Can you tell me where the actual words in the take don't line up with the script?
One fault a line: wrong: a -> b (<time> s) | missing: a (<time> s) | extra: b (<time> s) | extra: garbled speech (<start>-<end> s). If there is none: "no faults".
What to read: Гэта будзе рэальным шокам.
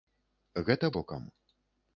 missing: будзе рэальным (0.9 s)